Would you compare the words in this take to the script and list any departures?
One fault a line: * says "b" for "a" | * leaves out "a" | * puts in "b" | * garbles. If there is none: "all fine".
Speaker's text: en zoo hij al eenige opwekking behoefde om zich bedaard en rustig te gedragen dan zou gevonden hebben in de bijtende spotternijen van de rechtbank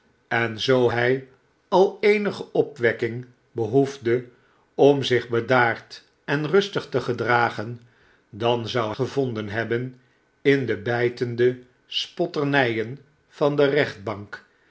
all fine